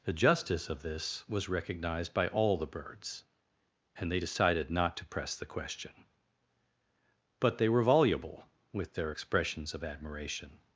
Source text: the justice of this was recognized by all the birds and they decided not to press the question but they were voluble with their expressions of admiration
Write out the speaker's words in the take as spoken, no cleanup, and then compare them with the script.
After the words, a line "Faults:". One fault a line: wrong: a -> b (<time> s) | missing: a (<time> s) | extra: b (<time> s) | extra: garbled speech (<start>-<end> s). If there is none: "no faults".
the justice of this was recognized by all the birds and they decided not to press the question but they were voluble with their expressions of admiration
Faults:
no faults